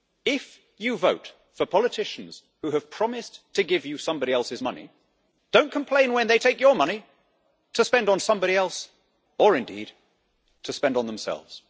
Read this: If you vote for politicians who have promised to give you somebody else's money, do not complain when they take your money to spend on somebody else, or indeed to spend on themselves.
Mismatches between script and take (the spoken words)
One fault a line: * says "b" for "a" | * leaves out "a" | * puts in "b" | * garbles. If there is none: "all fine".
all fine